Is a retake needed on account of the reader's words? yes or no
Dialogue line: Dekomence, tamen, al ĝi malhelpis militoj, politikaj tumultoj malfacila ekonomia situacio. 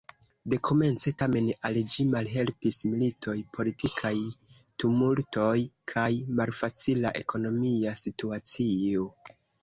yes